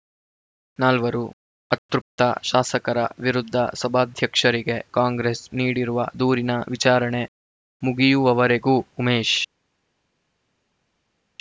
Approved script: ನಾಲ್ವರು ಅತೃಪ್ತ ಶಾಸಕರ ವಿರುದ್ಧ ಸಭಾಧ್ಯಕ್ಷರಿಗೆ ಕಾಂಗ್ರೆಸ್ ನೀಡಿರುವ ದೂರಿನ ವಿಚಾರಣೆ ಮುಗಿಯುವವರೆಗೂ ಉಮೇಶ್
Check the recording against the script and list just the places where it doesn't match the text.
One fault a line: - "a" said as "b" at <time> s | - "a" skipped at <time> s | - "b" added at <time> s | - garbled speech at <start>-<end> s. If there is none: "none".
none